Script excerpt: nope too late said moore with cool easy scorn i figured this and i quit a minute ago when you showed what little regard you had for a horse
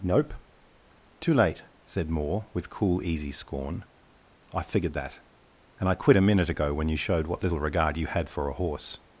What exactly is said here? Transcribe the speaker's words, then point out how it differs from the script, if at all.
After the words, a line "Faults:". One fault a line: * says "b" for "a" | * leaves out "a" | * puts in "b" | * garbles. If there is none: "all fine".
nope too late said moore with cool easy scorn i figured that and i quit a minute ago when you showed what little regard you had for a horse
Faults:
* says "that" for "this"